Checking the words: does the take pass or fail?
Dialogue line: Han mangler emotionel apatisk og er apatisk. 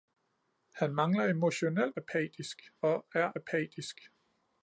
pass